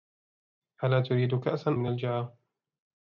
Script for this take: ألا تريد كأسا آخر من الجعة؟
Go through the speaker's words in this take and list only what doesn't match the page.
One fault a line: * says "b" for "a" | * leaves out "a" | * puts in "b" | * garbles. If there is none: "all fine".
* leaves out "آخر"